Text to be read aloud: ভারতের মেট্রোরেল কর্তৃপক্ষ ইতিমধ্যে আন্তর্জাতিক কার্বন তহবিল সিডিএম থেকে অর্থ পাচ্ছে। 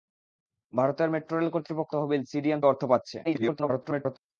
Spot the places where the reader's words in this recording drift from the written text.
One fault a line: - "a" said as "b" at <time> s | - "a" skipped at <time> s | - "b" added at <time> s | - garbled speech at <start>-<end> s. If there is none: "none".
- "ইতিমধ্যে আন্তর্জাতিক কার্বন" skipped at 1.9 s
- "থেকে" skipped at 2.6 s
- garbled speech at 3.2-4.2 s